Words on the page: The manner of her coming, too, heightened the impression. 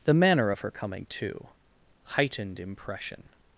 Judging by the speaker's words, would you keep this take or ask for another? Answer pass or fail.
fail